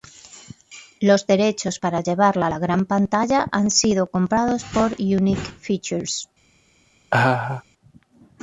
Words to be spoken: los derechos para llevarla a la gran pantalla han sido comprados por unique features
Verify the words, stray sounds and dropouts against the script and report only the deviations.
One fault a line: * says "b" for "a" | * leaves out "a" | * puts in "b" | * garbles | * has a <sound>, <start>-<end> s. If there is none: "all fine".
* has a laugh, 7.1-7.6 s